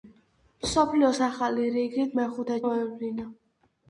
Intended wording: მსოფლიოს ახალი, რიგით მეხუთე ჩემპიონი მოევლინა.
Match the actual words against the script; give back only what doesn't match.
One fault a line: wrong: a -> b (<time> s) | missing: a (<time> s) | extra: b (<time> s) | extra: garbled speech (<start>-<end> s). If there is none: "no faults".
missing: ჩემპიონი (2.6 s)